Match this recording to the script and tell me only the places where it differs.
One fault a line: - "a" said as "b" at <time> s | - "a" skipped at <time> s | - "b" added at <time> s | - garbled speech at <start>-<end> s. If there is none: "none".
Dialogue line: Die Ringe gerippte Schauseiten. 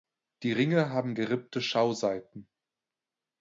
- "haben" added at 0.9 s